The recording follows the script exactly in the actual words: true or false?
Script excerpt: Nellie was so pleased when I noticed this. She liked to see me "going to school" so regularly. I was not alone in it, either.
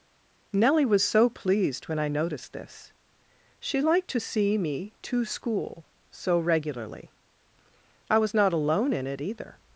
false